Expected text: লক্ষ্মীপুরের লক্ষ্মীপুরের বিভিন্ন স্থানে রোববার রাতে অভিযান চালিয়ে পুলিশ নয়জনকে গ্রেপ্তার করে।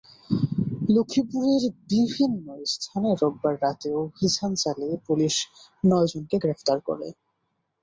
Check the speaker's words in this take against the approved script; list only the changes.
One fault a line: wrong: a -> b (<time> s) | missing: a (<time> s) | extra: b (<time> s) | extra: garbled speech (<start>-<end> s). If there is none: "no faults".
missing: লক্ষ্মীপুরের (1.6 s)